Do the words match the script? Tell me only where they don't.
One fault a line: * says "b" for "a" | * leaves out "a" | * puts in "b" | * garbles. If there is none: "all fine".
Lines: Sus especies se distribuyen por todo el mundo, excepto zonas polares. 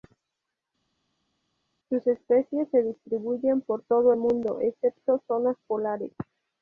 all fine